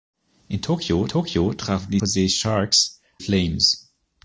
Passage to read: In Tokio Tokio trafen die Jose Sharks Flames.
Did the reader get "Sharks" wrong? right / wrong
right